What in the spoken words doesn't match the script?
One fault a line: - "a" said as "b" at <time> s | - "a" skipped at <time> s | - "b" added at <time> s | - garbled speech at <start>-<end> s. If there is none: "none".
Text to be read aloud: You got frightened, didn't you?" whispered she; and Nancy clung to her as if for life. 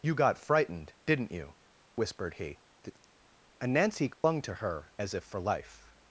- "she" said as "he" at 2.4 s